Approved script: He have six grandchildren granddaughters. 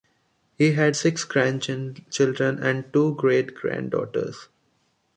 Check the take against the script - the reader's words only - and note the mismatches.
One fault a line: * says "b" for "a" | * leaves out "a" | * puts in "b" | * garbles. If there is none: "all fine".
* says "had" for "have"
* puts in "and two great"